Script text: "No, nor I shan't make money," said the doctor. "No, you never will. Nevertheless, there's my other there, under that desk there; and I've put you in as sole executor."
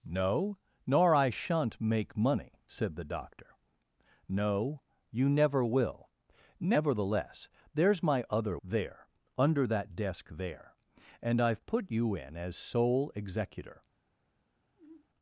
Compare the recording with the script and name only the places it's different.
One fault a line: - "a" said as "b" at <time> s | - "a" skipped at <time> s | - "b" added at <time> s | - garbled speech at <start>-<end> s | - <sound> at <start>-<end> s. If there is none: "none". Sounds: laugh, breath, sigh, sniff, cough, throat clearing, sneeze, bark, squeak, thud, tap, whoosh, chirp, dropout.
- sigh at 14.8-15.1 s